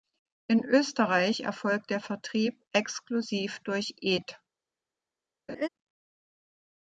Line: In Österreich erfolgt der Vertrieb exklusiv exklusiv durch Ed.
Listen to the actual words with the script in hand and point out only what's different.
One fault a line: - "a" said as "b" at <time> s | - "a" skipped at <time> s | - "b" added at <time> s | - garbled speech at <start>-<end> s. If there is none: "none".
- "exklusiv" skipped at 3.6 s